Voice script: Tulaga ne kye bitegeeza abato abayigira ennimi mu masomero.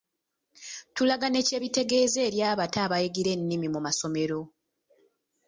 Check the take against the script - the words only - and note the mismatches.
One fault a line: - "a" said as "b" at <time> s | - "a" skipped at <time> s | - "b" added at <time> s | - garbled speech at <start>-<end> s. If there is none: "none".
- "eri" added at 2.3 s